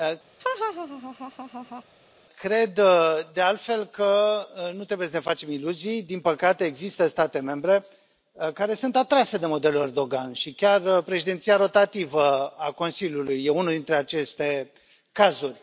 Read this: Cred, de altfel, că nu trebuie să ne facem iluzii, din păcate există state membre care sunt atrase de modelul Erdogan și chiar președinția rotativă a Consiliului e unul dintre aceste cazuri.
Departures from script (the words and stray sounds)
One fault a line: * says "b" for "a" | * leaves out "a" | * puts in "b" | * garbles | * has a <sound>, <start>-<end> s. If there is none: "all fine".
* has a laugh, 0.4-1.8 s